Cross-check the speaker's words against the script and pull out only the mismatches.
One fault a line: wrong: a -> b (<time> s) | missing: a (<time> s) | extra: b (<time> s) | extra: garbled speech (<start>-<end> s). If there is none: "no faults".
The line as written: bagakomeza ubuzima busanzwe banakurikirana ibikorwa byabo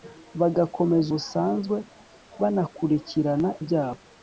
missing: ubuzima (1.1 s)
missing: ibikorwa (3.5 s)